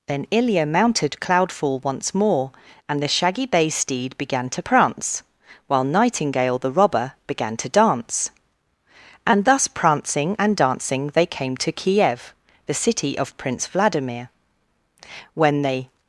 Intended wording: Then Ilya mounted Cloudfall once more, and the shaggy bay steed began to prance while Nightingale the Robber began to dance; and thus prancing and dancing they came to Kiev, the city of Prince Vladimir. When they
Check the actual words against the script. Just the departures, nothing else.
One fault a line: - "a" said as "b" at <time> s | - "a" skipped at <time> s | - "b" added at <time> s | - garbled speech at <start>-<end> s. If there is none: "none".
none